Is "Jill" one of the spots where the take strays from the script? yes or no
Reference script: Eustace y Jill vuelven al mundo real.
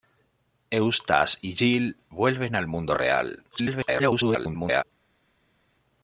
no